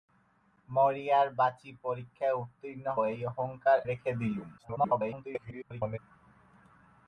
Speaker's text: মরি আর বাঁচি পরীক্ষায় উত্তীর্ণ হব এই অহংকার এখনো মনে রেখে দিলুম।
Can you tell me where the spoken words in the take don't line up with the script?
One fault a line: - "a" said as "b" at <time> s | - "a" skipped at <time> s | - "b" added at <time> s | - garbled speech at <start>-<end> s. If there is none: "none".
- "হব" skipped at 2.9 s
- "এখনো মনে" skipped at 3.8 s
- garbled speech at 4.6-6.0 s